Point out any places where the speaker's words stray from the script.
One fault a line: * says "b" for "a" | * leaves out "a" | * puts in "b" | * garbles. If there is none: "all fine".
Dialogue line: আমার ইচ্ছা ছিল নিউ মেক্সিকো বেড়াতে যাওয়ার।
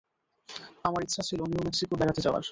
all fine